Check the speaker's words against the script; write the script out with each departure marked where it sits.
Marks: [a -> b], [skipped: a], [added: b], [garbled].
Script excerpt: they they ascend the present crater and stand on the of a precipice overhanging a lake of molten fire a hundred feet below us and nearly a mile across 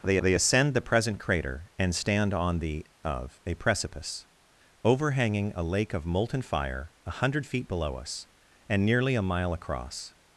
they they ascend the present crater and stand on the of a precipice overhanging a lake of molten fire a hundred feet below us and nearly a mile across